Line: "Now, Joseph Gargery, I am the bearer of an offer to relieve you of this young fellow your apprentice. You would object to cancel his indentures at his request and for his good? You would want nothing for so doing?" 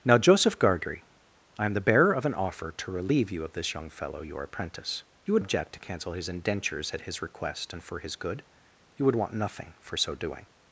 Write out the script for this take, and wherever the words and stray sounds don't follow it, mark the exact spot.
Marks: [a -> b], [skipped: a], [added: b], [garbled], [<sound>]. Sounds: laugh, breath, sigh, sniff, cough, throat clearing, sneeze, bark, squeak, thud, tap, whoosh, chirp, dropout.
"Now, Joseph Gargery, I am the bearer of an offer to relieve you of this young fellow your apprentice. You would object to cancel his indentures at his request and for his good? You would want nothing for so doing?"